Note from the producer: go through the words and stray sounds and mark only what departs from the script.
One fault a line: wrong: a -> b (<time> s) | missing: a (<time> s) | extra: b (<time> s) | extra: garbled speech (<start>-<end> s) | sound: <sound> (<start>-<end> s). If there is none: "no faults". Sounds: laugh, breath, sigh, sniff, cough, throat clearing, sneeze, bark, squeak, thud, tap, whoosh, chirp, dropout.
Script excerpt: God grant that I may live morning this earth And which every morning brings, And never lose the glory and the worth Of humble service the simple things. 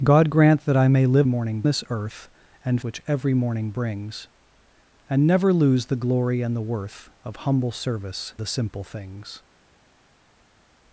no faults